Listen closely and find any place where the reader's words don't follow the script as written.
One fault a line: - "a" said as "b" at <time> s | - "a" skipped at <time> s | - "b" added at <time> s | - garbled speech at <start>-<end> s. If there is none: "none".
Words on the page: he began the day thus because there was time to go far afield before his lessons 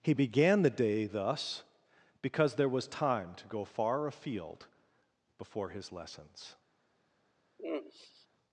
none